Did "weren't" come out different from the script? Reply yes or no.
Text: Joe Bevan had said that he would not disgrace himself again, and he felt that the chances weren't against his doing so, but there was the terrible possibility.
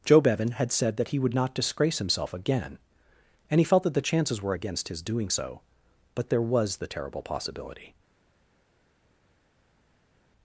yes